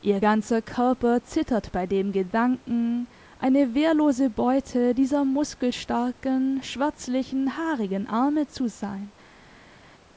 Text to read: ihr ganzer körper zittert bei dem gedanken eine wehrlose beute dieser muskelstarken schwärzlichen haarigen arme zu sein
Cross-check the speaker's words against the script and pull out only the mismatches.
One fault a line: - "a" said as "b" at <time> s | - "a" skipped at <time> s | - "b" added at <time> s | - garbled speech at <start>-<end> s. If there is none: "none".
none